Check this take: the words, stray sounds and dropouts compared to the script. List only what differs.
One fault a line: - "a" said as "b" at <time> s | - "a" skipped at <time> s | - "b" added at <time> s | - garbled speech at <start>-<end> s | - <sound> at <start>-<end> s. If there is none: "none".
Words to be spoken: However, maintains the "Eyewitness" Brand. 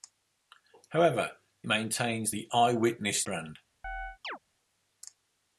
- chirp at 3.8-4.4 s